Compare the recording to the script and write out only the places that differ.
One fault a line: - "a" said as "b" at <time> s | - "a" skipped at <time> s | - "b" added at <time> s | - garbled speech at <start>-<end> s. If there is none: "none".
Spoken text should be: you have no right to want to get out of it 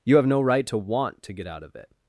none